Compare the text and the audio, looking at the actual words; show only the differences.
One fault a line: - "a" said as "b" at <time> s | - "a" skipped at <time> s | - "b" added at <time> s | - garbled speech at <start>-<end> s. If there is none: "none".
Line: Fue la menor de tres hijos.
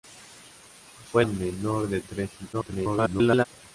- "la" skipped at 1.2 s
- garbled speech at 2.5-3.5 s